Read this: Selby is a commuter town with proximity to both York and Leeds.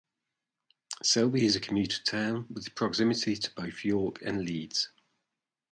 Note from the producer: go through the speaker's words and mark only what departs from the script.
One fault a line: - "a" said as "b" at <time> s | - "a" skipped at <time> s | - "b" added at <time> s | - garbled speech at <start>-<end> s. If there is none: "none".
none